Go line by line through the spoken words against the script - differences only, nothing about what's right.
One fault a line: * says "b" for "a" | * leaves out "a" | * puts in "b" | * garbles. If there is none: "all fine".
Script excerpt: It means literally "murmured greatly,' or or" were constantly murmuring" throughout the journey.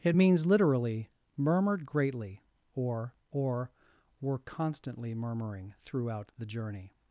all fine